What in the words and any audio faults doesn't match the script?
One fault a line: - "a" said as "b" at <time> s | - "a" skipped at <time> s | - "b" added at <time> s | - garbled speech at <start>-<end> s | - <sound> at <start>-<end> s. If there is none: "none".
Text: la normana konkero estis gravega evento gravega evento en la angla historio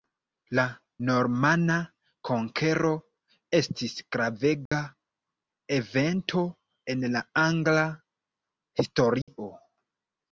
- dropout at 4.7-4.7 s
- "gravega evento" skipped at 6.4 s
- dropout at 9.2-9.3 s